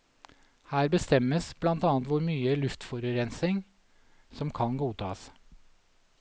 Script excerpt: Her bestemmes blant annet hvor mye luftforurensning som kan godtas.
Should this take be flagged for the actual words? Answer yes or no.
no